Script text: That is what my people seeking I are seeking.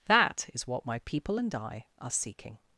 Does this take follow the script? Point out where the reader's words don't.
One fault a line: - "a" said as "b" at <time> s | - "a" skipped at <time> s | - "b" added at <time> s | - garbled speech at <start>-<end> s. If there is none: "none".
- "seeking" said as "and" at 1.3 s